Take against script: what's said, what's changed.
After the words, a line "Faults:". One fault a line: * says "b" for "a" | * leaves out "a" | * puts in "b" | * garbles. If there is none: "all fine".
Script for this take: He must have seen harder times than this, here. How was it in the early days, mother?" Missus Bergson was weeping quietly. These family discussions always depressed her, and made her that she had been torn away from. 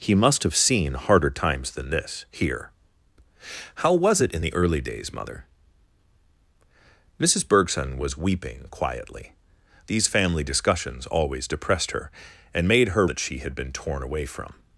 He must have seen harder times than this, here. How was it in the early days, mother?" Missus Bergson was weeping quietly. These family discussions always depressed her, and made her that she had been torn away from.
Faults:
all fine